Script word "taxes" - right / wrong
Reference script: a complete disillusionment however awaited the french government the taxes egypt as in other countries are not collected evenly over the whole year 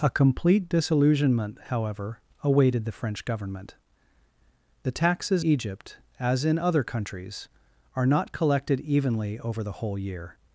right